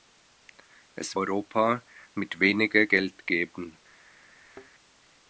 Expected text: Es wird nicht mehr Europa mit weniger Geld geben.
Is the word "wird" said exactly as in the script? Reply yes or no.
no